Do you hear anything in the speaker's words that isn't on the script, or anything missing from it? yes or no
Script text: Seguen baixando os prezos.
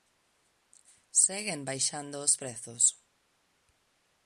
no